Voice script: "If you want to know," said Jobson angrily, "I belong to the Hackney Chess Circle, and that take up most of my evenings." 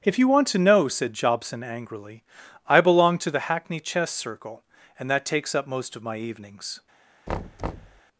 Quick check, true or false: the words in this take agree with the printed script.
false